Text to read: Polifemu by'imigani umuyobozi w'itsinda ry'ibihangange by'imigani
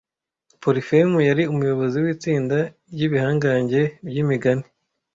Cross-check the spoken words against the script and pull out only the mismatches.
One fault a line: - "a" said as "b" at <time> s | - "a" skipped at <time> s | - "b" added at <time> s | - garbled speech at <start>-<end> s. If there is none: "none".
- "by'imigani" said as "yari" at 1.3 s